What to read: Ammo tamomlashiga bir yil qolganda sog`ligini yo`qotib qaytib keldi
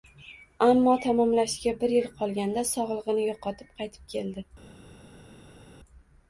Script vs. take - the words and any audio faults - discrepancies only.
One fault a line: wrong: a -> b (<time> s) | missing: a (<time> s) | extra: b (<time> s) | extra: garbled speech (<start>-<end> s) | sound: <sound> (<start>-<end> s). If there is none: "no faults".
no faults